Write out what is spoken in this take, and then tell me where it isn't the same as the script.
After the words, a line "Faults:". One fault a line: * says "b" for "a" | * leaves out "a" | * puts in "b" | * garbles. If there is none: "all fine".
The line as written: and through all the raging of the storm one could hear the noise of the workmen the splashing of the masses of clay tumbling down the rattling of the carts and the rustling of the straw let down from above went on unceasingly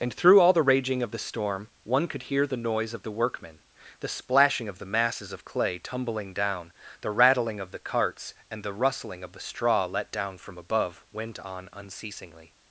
and through all the raging of the storm one could hear the noise of the workmen the splashing of the masses of clay tumbling down the rattling of the carts and the rustling of the straw let down from above went on unceasingly
Faults:
all fine